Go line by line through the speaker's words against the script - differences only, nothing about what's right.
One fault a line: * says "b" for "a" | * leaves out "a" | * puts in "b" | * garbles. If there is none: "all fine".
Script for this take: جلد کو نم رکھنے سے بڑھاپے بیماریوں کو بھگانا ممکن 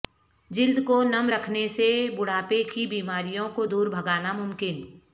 * puts in "کی"
* puts in "دور"